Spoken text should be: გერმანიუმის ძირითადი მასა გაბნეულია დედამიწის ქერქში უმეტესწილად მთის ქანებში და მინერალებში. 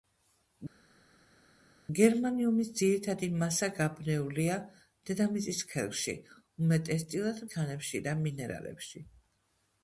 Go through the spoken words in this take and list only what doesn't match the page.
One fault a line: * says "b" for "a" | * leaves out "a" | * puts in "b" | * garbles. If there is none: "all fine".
* leaves out "მთის"